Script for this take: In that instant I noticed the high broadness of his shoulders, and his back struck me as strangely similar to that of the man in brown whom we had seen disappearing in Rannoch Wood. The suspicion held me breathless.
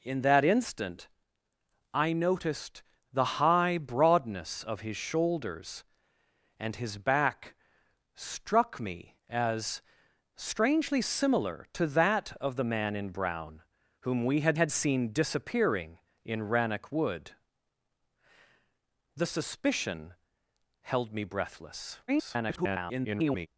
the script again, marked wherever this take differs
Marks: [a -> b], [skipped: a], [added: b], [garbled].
In that instant I noticed the high broadness of his shoulders, and his back struck me as strangely similar to that of the man in brown whom we had [added: had] seen disappearing in Rannoch Wood. The suspicion held me breathless. [garbled]